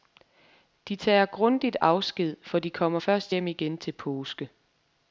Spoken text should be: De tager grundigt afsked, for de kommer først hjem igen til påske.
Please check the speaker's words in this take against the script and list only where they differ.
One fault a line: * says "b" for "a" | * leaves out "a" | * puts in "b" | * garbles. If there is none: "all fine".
all fine